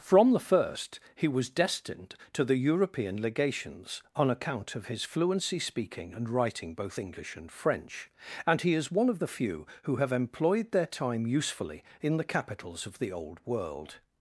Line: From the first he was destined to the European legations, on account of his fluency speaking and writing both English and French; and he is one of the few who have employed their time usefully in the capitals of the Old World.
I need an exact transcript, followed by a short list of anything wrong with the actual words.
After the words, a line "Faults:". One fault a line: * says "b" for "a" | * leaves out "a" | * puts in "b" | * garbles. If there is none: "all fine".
From the first he was destined to the European legations, on account of his fluency speaking and writing both English and French; and he is one of the few who have employed their time usefully in the capitals of the Old World.
Faults:
all fine